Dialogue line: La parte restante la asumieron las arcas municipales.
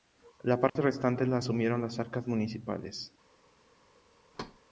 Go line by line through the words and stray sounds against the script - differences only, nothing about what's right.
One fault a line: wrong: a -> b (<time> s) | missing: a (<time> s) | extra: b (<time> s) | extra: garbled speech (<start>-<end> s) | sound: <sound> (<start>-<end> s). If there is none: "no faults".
sound: dropout (0.7-0.8 s)
sound: thud (4.3-4.6 s)